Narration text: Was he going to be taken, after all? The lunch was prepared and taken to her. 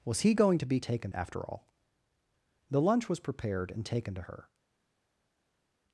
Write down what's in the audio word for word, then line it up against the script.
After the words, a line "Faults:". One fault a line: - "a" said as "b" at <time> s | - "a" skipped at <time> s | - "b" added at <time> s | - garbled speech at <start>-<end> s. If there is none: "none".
Was he going to be taken, after all? The lunch was prepared and taken to her.
Faults:
none